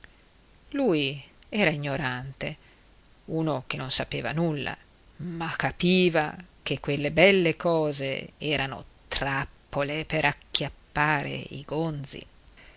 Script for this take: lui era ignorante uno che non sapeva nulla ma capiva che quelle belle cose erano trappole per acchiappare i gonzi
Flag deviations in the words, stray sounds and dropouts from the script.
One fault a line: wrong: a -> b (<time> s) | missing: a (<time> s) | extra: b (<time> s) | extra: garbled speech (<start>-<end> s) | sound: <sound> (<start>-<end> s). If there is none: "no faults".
no faults